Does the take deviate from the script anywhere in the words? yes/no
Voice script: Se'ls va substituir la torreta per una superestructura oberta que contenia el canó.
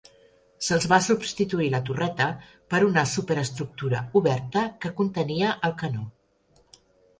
no